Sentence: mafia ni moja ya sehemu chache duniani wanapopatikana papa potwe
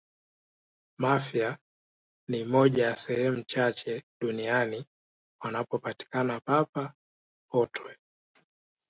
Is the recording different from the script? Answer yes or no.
no